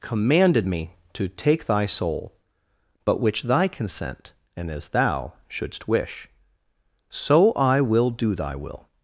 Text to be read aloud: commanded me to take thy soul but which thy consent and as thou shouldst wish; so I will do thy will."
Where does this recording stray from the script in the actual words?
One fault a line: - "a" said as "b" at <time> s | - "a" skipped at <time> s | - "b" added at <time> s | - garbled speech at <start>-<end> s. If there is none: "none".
none